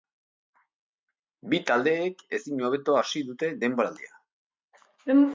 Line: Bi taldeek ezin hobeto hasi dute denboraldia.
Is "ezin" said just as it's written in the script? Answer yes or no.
yes